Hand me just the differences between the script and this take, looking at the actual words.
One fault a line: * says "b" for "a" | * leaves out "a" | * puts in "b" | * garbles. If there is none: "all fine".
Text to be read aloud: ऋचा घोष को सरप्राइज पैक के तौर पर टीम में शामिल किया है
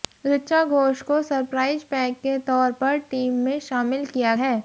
all fine